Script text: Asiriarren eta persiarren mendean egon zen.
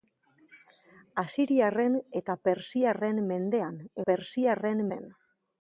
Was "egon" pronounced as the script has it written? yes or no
no